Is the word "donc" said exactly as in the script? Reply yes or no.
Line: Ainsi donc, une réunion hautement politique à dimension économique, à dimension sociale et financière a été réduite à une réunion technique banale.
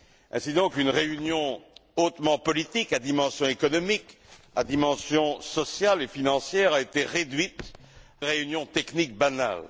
yes